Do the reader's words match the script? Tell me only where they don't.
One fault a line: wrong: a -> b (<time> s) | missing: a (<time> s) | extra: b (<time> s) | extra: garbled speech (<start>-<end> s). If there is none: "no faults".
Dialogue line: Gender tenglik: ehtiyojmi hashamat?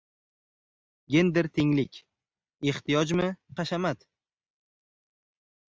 no faults